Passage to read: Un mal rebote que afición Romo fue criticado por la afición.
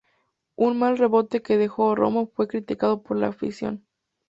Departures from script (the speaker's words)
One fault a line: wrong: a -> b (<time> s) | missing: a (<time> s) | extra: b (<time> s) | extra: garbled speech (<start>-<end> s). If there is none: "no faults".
wrong: afición -> dejó (1.6 s)